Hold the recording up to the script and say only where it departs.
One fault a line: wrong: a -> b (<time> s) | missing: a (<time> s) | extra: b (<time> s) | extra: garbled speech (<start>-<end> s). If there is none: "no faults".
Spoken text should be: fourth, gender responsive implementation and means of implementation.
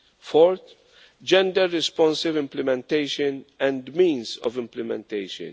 no faults